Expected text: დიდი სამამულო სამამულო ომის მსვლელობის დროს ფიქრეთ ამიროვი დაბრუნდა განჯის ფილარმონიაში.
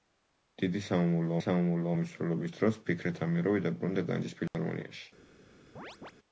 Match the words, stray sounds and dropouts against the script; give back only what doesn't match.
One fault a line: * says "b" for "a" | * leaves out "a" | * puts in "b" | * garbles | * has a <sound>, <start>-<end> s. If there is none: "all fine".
* has a dropout, 4.5-4.5 s
* has a chirp, 5.8-6.1 s